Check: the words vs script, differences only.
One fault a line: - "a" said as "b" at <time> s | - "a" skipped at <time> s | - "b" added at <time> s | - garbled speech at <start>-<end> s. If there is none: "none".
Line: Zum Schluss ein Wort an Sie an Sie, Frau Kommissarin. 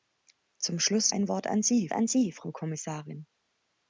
none